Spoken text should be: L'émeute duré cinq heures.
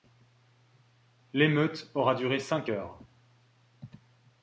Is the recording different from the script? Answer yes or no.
yes